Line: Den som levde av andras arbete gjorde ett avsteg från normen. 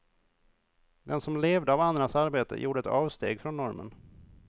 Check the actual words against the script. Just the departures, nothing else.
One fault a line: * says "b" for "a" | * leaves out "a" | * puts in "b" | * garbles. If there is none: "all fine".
all fine